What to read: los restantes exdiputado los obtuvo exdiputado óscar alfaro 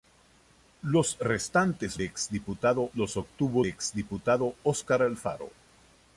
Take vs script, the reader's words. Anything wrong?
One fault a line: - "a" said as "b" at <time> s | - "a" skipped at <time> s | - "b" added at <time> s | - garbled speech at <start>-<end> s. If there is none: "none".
none